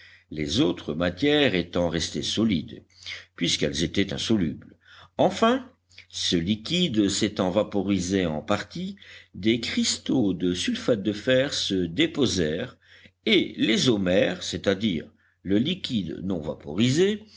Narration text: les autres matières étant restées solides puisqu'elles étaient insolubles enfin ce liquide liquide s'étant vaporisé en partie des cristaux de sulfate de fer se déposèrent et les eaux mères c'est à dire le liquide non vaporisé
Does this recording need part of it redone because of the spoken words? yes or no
yes